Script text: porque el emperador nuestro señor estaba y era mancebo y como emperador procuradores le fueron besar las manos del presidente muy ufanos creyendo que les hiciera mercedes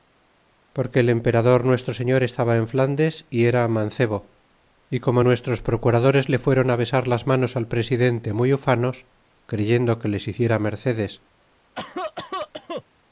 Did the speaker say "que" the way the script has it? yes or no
yes